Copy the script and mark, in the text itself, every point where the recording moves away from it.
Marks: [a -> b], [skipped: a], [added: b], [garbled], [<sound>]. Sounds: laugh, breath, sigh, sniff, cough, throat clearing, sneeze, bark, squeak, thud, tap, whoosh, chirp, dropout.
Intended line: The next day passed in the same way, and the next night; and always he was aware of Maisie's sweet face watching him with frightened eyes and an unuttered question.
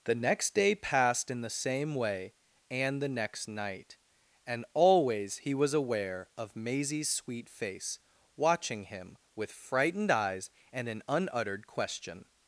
The next day passed in the same way, and the next night; and always he was aware of Maisie's sweet face watching him with frightened eyes and an unuttered question.